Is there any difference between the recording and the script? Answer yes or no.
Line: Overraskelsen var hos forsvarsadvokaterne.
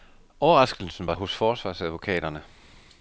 no